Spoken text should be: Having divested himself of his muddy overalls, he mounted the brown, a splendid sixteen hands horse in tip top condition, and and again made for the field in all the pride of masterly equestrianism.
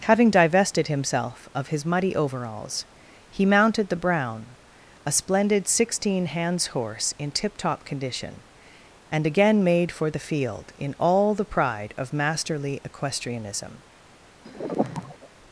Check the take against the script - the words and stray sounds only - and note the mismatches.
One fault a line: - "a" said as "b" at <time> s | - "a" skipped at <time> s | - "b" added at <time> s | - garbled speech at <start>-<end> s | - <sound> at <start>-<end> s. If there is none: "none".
- "and" skipped at 9.3 s
- sigh at 14.4-15.3 s